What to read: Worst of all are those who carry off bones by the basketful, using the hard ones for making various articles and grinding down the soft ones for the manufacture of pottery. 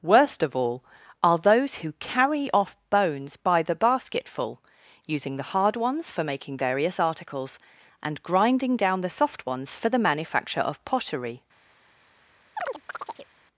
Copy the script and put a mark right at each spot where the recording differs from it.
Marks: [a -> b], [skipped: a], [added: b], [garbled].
Worst of all are those who carry off bones by the basketful, using the hard ones for making various articles and grinding down the soft ones for the manufacture of pottery.